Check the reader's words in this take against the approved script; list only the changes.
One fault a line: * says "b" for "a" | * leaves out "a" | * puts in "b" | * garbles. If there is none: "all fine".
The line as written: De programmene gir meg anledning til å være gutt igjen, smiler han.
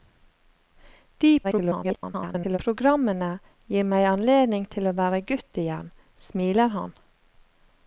* garbles